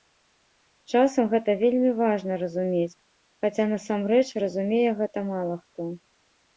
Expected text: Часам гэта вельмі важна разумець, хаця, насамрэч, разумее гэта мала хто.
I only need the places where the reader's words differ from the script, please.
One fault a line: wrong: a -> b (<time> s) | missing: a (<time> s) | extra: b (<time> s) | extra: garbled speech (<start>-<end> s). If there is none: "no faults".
no faults